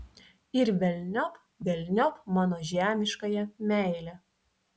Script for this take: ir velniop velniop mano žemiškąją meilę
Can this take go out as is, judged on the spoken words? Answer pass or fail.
pass